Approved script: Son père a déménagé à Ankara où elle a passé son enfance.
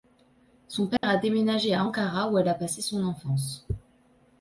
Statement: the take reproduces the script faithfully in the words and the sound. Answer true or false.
false